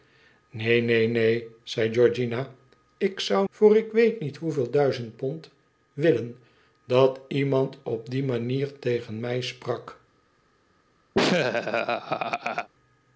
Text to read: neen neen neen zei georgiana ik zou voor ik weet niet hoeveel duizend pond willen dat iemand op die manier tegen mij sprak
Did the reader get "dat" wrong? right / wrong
right